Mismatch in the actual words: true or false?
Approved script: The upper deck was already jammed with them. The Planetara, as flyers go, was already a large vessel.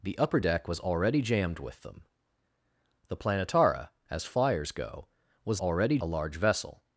false